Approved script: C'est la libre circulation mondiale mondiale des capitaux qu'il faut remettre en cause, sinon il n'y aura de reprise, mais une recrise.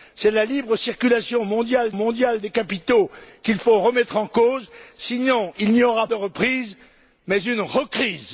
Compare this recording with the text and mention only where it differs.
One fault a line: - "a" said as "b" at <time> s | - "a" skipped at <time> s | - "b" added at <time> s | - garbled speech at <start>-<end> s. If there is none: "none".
none